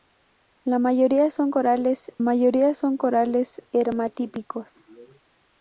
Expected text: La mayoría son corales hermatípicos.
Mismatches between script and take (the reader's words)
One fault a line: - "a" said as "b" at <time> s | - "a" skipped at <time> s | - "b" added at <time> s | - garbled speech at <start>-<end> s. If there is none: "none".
- "mayoría son corales" added at 2.2 s